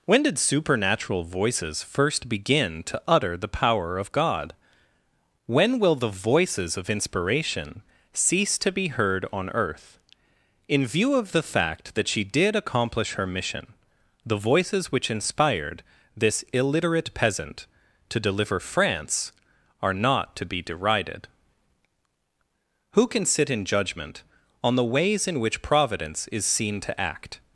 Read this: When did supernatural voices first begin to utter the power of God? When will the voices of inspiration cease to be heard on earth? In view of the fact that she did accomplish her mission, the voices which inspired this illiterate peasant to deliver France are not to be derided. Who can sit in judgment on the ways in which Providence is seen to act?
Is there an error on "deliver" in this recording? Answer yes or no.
no